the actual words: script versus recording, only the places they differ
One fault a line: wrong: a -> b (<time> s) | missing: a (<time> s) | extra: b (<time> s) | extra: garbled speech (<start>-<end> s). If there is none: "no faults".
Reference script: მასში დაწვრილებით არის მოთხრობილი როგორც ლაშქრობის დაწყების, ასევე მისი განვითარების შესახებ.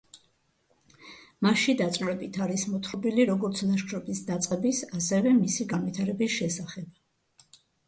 no faults